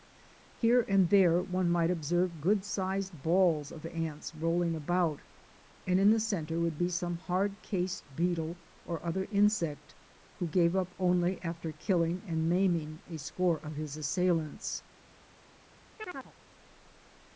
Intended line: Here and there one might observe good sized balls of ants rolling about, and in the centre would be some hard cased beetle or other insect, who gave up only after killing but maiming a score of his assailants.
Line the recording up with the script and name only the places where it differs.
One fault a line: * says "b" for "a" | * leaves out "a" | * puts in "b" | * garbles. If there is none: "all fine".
* says "and" for "but"